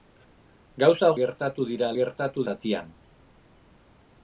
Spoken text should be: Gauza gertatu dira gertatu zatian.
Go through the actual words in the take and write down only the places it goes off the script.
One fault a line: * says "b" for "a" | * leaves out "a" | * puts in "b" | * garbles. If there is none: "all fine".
all fine